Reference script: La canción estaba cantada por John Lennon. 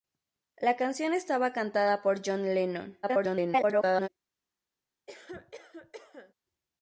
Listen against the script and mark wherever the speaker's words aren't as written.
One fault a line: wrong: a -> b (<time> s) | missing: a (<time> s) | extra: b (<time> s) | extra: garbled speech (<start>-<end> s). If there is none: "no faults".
extra: garbled speech (3.0-4.1 s)